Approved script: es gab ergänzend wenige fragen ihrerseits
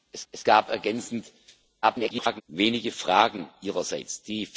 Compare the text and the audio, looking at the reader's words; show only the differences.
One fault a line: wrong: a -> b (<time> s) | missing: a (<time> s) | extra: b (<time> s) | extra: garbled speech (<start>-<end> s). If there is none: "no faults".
extra: es (0.3 s)
extra: garbled speech (1.8-2.4 s)